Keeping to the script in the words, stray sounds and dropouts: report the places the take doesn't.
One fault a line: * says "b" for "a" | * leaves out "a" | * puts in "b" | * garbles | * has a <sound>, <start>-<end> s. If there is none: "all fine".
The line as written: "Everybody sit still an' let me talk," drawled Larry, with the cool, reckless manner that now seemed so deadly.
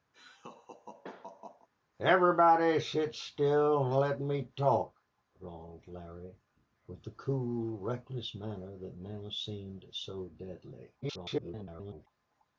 * has a laugh, 0.1-1.7 s
* garbles